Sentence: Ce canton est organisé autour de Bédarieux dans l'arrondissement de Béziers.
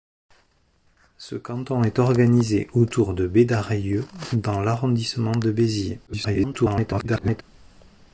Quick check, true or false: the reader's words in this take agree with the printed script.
false